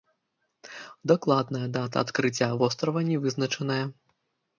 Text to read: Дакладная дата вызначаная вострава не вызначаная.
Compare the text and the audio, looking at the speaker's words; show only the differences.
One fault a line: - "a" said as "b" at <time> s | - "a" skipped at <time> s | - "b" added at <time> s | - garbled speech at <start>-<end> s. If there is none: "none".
- "вызначаная" said as "адкрыцця" at 2.0 s